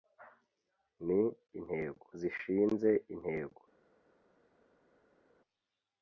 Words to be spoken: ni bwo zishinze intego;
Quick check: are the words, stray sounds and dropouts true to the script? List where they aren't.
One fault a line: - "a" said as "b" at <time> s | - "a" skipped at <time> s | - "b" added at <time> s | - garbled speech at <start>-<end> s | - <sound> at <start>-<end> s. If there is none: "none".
- "bwo" said as "intego" at 1.6 s